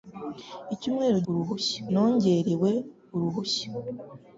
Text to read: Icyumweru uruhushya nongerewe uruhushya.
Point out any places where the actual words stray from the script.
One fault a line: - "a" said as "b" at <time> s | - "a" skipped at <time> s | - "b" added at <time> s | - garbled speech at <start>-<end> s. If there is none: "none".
none